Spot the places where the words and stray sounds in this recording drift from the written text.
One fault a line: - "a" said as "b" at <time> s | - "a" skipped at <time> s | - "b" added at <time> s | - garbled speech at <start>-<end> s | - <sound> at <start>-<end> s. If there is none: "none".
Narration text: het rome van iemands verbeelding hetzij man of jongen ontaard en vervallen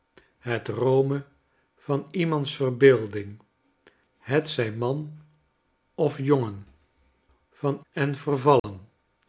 - "ontaard" said as "van" at 7.5 s
- dropout at 8.6-8.6 s